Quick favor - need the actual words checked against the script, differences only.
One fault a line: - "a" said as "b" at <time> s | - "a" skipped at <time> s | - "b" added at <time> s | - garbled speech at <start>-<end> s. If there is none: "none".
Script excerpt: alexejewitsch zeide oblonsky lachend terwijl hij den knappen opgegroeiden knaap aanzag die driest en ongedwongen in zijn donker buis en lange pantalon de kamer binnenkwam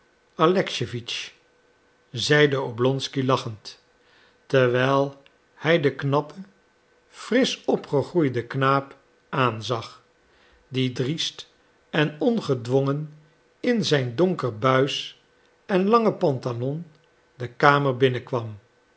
- "frisch" added at 7.1 s